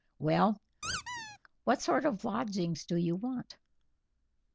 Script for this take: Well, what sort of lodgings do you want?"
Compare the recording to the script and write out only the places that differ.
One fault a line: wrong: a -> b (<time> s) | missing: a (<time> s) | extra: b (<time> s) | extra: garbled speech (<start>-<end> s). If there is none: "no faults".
no faults